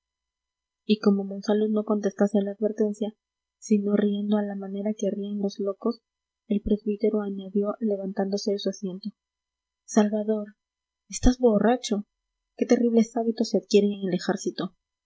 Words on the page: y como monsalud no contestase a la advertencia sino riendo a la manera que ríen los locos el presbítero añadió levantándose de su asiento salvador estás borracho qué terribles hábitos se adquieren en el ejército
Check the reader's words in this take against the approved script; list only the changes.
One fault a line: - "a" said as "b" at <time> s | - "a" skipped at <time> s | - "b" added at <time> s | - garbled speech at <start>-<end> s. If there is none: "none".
none